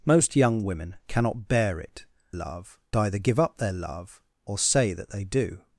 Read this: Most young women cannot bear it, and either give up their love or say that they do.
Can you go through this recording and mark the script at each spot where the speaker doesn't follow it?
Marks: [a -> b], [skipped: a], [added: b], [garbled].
Most young women cannot bear it, [and -> love] either give up their love or say that they do.